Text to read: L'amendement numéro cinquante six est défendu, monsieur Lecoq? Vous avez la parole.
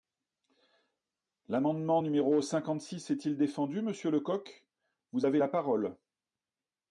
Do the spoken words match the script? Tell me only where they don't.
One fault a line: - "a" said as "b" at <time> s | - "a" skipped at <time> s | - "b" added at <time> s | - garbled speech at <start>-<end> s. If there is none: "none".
- "il" added at 3.2 s